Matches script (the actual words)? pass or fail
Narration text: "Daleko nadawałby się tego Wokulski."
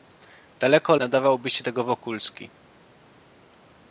pass